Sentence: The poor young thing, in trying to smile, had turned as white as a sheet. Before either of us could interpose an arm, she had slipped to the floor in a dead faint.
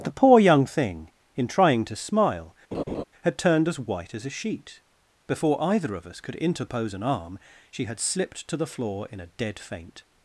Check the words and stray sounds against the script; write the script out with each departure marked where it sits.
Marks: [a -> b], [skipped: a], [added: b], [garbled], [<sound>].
The poor young thing, in trying to smile, [laugh] had turned as white as a sheet. Before either of us could interpose an arm, she had slipped to the floor in a dead faint.